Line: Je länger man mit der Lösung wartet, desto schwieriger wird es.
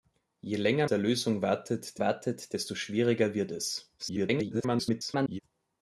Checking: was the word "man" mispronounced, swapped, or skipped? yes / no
yes